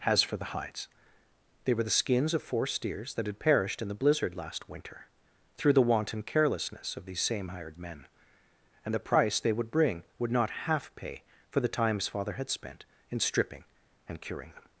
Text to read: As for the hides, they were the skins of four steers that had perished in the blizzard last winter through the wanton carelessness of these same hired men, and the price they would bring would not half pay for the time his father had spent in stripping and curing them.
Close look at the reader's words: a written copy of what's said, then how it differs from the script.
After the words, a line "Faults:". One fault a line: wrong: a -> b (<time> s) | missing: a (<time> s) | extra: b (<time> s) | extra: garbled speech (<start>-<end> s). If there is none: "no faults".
Has for the hides, they were the skins of four steers that had perished in the blizzard last winter through the wanton carelessness of these same hired men, and the price they would bring would not half pay for the time his father had spent in stripping and curing them.
Faults:
wrong: As -> Has (0.0 s)